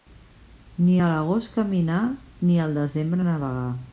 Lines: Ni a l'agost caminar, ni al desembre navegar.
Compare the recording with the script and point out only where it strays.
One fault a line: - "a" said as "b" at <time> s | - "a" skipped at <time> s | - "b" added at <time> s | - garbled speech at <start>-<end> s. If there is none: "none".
none